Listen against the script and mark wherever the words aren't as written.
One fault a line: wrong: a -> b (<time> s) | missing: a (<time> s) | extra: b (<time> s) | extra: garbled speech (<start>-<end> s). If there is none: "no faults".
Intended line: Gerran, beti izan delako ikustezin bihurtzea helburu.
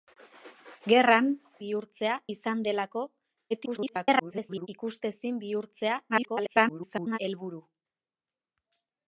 wrong: beti -> bihurtzea (1.6 s)
extra: garbled speech (3.5-4.7 s)
extra: garbled speech (6.1-7.2 s)